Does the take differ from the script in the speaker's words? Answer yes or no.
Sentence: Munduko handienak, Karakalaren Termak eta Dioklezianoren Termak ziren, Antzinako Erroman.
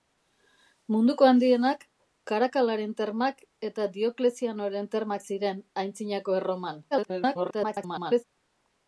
yes